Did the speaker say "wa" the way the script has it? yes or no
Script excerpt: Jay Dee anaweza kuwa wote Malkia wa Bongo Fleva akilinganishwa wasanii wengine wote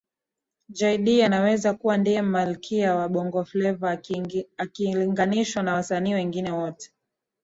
yes